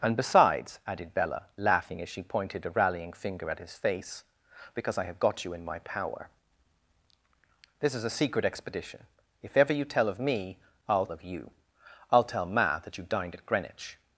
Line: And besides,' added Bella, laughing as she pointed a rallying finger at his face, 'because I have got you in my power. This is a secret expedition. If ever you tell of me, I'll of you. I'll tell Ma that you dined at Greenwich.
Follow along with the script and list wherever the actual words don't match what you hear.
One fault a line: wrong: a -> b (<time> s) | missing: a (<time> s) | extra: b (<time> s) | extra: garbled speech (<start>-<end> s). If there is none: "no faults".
no faults